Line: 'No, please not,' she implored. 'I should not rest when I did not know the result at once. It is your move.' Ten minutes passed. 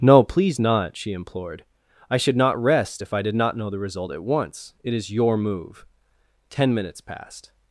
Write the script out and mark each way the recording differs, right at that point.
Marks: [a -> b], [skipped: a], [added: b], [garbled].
'No, please not,' she implored. 'I should not rest [when -> if] I did not know the result at once. It is your move.' Ten minutes passed.